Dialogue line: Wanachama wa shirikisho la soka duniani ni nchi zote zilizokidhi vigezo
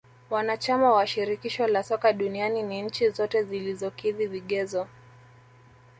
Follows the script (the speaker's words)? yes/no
yes